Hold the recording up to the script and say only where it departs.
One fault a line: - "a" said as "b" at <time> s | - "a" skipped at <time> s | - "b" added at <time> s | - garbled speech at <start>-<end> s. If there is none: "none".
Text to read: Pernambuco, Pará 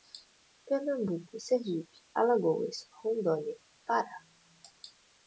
- "Sergipe Alagoas Rondônia" added at 1.4 s